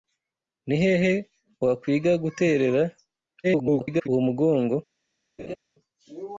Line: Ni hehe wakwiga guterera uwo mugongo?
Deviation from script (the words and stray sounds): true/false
true